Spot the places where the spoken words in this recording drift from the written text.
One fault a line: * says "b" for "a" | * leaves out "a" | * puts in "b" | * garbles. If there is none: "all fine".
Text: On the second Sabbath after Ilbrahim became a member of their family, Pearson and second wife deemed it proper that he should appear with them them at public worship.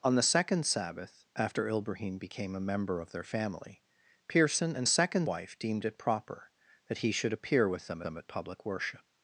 all fine